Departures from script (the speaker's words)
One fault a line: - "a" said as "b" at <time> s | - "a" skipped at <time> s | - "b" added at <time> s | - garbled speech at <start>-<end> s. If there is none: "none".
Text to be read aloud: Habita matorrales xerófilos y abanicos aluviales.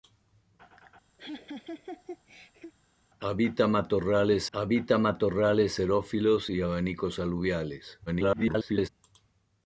- "habita matorrales" added at 4.5 s
- garbled speech at 8.1-8.9 s